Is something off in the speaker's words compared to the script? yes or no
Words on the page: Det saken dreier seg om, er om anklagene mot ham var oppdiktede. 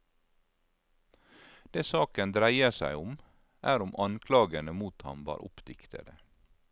no